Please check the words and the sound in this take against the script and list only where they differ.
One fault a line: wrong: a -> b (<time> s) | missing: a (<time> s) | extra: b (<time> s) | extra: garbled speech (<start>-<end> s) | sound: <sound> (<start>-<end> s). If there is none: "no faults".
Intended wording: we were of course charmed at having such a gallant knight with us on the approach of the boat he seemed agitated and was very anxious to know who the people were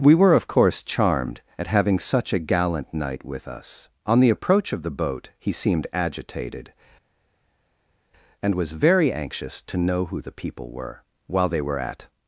extra: while they were at (11.3 s)